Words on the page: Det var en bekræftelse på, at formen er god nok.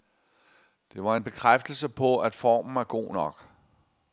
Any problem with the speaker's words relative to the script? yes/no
no